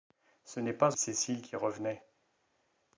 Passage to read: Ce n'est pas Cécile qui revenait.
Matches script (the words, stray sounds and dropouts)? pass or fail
pass